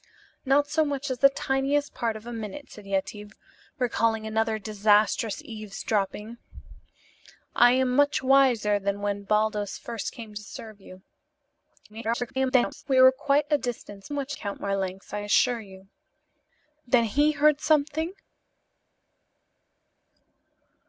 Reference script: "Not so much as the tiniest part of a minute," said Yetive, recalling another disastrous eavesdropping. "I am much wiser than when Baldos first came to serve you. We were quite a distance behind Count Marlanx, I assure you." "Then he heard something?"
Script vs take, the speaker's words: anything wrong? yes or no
yes